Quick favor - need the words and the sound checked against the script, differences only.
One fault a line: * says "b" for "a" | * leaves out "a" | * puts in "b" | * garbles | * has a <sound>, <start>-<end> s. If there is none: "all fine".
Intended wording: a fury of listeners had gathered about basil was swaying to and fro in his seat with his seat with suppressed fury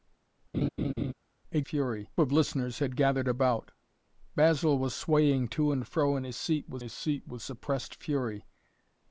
* has a laugh, 0.5-1.1 s